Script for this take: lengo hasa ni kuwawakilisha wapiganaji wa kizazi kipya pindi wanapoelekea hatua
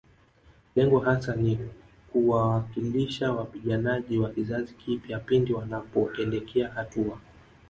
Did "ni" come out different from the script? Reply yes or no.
no